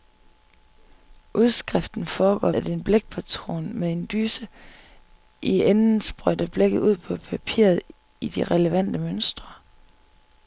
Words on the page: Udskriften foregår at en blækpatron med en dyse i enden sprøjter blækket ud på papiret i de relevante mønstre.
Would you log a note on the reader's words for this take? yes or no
no